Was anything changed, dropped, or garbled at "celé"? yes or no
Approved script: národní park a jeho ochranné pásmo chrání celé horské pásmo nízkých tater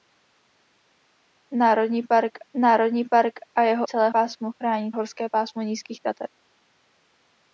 yes